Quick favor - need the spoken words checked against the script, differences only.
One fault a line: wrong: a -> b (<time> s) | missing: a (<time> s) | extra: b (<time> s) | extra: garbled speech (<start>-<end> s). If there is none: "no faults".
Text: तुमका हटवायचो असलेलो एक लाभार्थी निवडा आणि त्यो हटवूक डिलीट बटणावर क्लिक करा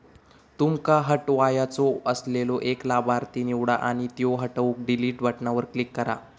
no faults